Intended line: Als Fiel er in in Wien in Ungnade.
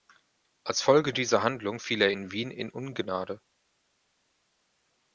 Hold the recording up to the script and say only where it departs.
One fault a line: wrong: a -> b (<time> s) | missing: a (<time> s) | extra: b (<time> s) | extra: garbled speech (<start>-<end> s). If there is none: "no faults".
extra: Folge dieser Handlung (0.8 s)
missing: in (2.3 s)